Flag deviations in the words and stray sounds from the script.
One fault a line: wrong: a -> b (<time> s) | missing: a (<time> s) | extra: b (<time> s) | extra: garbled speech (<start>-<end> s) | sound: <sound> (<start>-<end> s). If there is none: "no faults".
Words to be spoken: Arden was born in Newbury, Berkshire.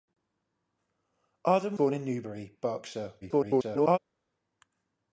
missing: was (1.8 s)
extra: garbled speech (3.2-4.0 s)